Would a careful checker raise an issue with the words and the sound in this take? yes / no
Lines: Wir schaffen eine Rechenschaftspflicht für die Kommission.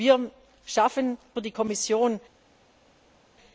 yes